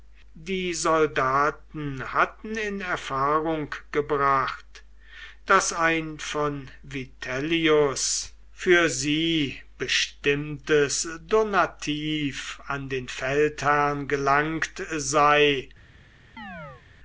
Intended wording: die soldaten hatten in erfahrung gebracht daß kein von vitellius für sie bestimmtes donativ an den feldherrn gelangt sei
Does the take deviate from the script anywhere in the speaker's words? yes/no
yes